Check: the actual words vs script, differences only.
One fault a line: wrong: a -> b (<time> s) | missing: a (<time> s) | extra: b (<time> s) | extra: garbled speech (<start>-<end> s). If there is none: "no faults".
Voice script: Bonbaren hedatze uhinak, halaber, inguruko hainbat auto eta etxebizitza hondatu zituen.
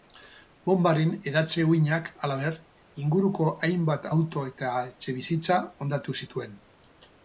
no faults